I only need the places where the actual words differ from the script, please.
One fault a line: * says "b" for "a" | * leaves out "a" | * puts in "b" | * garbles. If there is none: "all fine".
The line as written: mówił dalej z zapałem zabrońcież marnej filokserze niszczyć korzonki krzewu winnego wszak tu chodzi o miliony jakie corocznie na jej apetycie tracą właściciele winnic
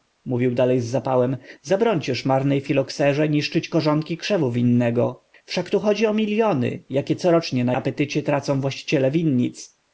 * leaves out "jej"